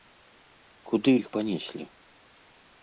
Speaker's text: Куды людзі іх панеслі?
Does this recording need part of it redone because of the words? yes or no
yes